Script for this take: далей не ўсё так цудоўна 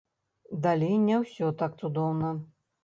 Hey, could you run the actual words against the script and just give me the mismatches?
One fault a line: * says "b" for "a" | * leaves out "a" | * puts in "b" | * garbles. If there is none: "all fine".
all fine